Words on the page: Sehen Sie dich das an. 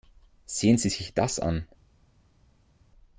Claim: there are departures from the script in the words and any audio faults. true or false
true